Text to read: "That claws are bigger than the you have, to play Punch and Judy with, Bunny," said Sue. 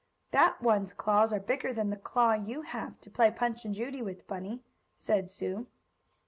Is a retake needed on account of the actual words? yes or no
yes